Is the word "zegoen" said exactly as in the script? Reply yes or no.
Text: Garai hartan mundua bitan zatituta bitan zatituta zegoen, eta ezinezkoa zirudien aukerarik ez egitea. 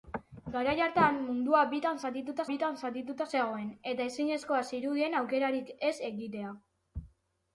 yes